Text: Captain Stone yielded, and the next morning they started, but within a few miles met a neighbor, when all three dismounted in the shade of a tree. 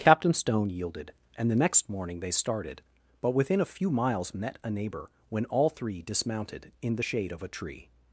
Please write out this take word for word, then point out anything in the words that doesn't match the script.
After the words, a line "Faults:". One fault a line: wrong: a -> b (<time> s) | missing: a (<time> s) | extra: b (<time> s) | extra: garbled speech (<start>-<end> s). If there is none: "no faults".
Captain Stone yielded, and the next morning they started, but within a few miles met a neighbor, when all three dismounted in the shade of a tree.
Faults:
no faults